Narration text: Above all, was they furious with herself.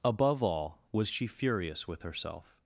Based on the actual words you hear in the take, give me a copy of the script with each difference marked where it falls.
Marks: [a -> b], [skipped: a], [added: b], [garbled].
Above all, was [they -> she] furious with herself.